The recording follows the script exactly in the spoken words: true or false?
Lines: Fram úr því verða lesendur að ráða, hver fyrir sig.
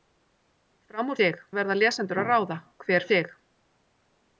false